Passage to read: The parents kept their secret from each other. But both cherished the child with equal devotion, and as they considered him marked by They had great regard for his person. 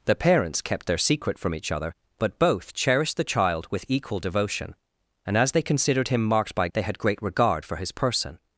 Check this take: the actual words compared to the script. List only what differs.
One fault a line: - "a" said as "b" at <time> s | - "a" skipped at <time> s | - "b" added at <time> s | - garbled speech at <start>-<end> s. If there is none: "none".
none